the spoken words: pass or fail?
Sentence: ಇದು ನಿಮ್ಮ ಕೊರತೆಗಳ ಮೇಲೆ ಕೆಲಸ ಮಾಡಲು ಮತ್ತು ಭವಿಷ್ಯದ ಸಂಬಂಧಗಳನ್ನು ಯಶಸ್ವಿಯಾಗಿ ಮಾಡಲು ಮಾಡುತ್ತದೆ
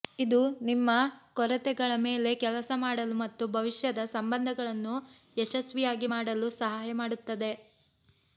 fail